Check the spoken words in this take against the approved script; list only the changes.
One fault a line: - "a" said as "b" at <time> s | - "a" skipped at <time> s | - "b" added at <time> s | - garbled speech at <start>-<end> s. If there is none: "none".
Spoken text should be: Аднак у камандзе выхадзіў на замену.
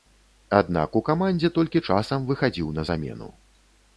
- "толькі часам" added at 1.6 s